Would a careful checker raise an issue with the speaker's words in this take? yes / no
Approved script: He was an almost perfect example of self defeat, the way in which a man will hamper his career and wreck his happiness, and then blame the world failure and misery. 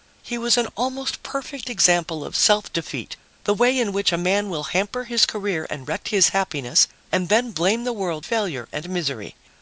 no